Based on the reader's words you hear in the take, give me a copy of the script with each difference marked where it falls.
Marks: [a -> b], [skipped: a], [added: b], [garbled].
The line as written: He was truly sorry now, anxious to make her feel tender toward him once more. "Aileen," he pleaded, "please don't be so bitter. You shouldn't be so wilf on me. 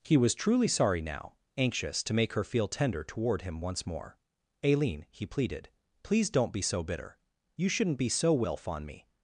He was truly sorry now, anxious to make her feel tender toward him once more. "Aileen," he pleaded, "please don't be so bitter. You shouldn't be so wilf on me.